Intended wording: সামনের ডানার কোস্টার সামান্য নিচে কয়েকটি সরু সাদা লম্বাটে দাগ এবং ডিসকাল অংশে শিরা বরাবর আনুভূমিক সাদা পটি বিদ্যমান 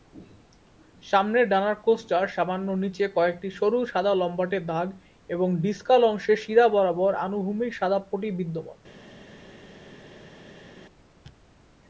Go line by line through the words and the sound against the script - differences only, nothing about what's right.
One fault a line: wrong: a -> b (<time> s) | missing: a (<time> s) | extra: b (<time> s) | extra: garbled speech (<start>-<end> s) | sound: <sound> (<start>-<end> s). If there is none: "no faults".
no faults